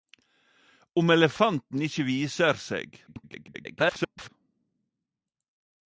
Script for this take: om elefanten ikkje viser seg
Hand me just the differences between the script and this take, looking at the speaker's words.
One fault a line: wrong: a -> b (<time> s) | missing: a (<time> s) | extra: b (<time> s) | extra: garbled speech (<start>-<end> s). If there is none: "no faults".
extra: garbled speech (3.1-4.3 s)